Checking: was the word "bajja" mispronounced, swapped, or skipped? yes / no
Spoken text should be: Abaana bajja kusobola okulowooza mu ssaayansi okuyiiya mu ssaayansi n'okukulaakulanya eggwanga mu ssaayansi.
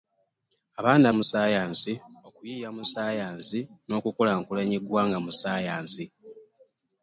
yes